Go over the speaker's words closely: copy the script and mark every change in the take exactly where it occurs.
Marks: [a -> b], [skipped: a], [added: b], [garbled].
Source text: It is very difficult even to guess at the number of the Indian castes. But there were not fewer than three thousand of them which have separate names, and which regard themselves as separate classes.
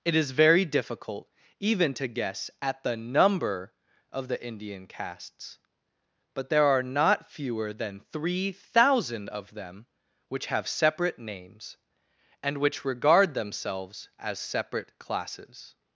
It is very difficult even to guess at the number of the Indian castes. But there [were -> are] not fewer than three thousand of them which have separate names, and which regard themselves as separate classes.